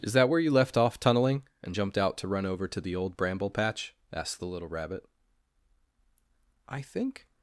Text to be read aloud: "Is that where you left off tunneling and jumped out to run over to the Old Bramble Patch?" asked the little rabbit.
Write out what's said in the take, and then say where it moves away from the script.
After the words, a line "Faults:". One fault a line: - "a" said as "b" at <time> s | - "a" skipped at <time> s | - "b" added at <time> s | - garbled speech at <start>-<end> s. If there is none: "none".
"Is that where you left off tunneling and jumped out to run over to the Old Bramble Patch?" asked the little rabbit. "I think
Faults:
- "I think" added at 6.7 s